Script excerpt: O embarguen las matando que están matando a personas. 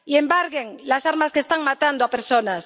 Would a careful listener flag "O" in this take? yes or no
yes